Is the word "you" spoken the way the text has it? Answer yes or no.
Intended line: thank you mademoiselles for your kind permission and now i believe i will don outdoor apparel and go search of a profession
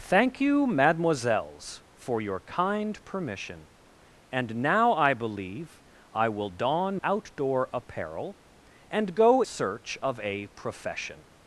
yes